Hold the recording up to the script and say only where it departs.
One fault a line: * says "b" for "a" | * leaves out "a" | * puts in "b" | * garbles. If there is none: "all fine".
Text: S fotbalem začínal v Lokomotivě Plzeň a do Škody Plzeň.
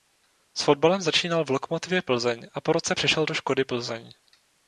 * puts in "po roce přešel"